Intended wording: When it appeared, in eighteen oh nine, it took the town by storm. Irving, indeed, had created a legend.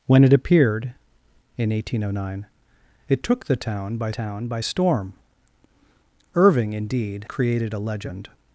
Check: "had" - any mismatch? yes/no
yes